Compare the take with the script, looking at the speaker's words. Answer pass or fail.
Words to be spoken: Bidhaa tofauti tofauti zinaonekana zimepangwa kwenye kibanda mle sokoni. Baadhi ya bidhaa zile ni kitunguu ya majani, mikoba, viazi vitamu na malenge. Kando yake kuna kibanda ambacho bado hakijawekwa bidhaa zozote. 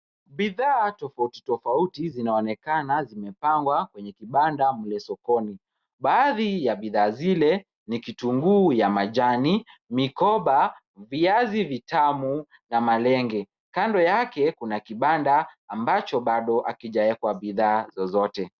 pass